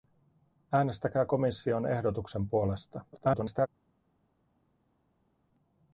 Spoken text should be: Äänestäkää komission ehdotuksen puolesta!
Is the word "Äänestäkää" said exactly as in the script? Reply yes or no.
yes